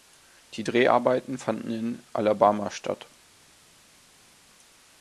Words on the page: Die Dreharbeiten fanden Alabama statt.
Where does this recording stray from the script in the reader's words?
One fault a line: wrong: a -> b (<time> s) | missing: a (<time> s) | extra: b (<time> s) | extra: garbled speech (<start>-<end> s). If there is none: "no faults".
extra: in (1.7 s)